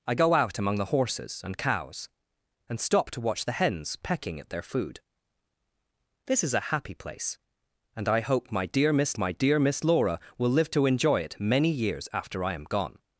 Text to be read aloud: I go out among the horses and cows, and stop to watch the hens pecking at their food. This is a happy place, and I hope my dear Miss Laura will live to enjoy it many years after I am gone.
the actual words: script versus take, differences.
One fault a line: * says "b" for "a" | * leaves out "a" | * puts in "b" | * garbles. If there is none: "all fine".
* puts in "my dear Miss"